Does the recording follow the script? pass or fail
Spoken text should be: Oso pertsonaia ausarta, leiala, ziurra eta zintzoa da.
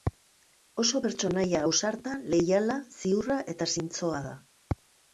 pass